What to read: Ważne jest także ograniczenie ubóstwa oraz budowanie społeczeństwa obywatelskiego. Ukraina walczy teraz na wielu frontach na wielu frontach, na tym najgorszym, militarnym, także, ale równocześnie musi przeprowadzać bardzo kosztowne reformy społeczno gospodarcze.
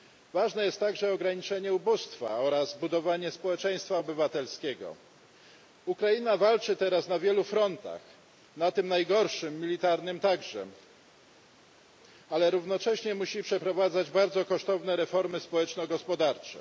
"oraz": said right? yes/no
yes